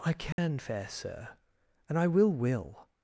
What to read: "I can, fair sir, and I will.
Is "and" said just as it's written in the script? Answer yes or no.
yes